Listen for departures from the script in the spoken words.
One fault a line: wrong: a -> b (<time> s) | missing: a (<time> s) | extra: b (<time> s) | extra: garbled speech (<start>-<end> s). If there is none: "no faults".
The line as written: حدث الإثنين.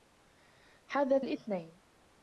no faults